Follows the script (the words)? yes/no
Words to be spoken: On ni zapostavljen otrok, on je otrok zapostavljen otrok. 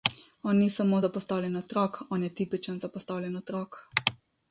no